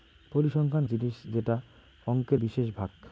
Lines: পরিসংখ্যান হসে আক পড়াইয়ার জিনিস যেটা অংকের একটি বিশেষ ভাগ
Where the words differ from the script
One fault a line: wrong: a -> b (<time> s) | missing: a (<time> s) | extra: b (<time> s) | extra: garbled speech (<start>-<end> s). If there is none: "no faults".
missing: হসে আক পড়াইয়ার (0.9 s)
missing: একটি (2.4 s)